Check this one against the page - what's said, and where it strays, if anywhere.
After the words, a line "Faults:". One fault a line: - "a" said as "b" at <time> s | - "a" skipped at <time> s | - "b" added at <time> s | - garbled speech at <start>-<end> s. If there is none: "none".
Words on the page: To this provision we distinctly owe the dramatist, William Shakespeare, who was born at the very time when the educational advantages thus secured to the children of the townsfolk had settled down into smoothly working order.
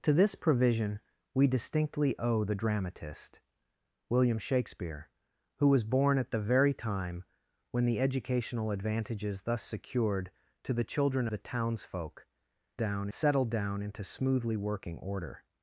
To this provision we distinctly owe the dramatist, William Shakespeare, who was born at the very time when the educational advantages thus secured to the children the townsfolk down settled down into smoothly working order.
Faults:
- "of" skipped at 11.3 s
- "had" said as "down" at 12.8 s